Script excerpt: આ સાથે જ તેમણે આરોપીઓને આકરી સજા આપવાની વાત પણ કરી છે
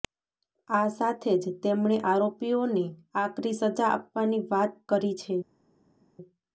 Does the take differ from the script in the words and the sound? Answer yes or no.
yes